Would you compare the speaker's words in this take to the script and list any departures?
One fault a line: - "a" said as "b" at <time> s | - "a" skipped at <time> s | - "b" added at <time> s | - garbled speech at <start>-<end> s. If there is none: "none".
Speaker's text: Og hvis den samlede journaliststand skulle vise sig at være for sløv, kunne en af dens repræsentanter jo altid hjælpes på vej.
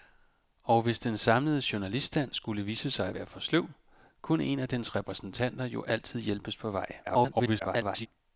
- garbled speech at 7.0-8.1 s